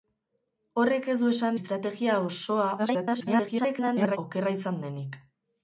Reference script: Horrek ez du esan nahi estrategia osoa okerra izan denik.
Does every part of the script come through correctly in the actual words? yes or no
no